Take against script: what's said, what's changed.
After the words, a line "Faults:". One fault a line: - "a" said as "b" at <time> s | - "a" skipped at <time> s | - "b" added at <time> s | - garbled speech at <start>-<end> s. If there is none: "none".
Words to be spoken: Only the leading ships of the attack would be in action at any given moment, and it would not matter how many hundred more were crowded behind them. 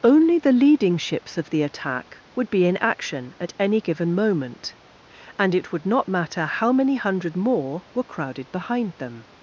Only the leading ships of the attack would be in action at any given moment, and it would not matter how many hundred more were crowded behind them.
Faults:
none